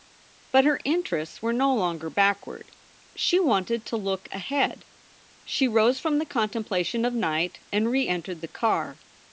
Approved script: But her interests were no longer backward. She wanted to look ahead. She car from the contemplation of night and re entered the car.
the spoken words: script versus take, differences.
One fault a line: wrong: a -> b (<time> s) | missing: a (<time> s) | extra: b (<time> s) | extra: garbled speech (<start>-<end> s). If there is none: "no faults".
wrong: car -> rose (5.7 s)